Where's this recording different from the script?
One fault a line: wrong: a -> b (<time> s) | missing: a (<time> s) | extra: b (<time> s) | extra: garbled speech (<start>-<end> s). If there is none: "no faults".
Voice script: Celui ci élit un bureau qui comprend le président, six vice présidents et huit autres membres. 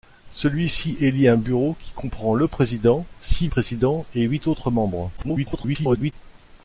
missing: vice (3.5 s)
extra: garbled speech (5.2-6.1 s)